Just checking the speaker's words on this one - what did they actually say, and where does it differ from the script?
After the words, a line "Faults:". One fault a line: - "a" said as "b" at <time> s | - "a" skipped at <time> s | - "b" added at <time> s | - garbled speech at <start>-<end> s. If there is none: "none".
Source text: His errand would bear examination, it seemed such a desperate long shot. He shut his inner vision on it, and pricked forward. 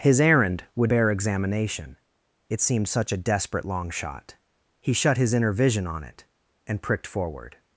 His errand would bear examination, it seemed such a desperate long shot. He shut his inner vision on it, and pricked forward.
Faults:
none